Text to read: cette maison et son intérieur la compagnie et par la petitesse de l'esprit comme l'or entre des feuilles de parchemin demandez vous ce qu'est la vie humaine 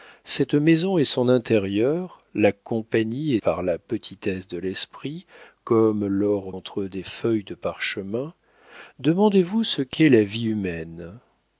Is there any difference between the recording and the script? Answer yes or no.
no